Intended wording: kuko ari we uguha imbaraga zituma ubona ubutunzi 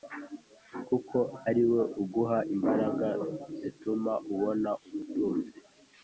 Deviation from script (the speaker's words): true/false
false